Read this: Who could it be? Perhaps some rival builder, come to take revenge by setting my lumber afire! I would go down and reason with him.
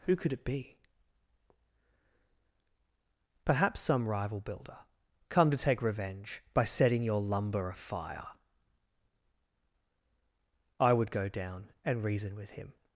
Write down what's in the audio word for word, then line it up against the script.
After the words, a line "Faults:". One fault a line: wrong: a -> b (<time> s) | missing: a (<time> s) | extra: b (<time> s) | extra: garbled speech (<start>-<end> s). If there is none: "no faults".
Who could it be? Perhaps some rival builder, come to take revenge by setting your lumber afire! I would go down and reason with him.
Faults:
wrong: my -> your (7.0 s)